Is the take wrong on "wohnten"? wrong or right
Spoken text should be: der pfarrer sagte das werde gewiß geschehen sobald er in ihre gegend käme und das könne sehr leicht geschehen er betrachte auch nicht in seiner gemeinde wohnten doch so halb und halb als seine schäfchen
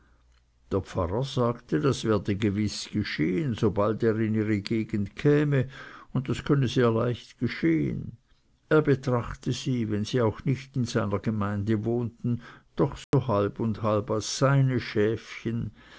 right